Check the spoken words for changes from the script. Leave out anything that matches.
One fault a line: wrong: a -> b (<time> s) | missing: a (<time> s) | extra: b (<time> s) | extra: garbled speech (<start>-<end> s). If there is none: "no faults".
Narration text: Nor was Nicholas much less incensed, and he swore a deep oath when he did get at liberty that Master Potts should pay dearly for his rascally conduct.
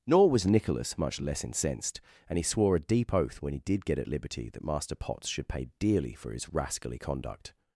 no faults